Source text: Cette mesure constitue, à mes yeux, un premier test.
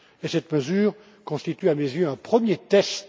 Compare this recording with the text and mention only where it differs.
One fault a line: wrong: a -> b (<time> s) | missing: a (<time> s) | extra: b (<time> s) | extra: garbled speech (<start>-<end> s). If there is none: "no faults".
no faults